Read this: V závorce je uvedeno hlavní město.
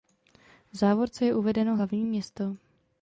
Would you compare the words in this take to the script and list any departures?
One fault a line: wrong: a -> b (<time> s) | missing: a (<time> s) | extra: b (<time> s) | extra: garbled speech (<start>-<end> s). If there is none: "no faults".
no faults